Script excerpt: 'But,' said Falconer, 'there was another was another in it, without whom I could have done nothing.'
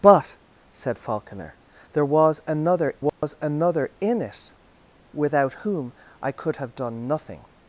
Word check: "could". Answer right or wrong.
right